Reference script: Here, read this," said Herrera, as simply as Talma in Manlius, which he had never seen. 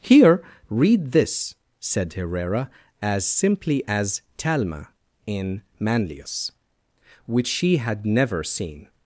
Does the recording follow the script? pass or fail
fail